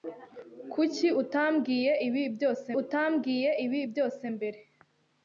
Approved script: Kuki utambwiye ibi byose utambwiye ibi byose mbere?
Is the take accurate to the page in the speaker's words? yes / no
yes